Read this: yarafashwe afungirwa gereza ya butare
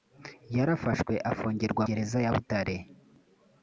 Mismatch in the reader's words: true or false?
false